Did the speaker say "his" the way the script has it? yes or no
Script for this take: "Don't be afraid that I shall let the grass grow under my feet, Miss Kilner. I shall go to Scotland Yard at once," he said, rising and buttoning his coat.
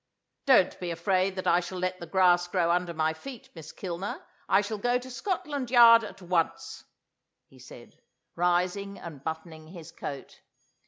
yes